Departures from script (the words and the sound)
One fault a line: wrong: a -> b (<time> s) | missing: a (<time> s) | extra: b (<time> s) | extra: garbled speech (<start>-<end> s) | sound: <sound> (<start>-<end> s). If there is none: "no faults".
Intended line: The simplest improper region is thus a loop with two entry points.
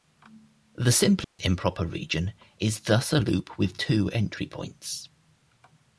sound: dropout (1.2-1.4 s)